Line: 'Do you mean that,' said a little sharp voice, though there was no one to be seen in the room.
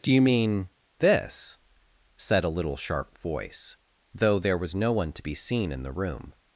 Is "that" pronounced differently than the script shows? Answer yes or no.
yes